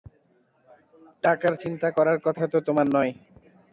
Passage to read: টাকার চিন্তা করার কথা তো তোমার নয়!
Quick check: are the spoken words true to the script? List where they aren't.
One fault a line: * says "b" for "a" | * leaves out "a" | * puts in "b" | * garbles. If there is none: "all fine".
all fine